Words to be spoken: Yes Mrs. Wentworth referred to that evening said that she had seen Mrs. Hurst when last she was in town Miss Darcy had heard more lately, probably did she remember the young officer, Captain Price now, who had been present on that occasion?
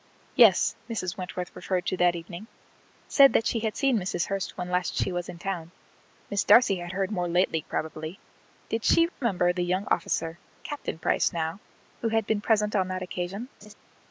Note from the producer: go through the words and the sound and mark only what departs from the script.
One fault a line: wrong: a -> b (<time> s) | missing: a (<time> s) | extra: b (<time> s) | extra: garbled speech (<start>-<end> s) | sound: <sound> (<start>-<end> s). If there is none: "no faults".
sound: dropout (9.1-9.2 s)
sound: laugh (13.6-13.7 s)